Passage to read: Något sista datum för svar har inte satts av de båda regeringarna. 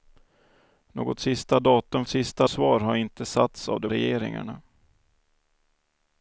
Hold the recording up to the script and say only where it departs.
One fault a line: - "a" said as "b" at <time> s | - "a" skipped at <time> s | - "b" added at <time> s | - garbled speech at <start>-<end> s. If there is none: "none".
- "för" said as "sista" at 2.1 s
- "båda" skipped at 3.9 s